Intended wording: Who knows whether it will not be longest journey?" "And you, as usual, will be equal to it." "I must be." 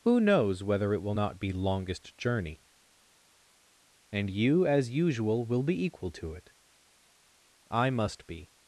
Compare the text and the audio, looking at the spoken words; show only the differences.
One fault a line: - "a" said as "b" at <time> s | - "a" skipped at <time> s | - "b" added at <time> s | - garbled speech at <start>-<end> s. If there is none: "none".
none